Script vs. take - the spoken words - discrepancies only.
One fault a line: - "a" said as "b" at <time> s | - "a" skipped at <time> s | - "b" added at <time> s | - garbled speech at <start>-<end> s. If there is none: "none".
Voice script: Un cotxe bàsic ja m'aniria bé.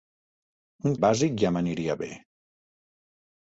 - "cotxe" skipped at 0.9 s